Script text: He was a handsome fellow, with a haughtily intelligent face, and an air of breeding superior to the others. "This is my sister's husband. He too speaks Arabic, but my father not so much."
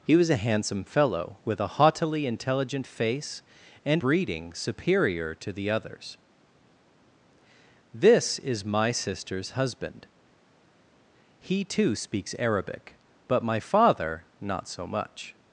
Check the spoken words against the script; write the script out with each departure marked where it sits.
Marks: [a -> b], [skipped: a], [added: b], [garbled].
He was a handsome fellow, with a haughtily intelligent face, and [skipped: an air of] breeding superior to the others. "This is my sister's husband. He too speaks Arabic, but my father not so much."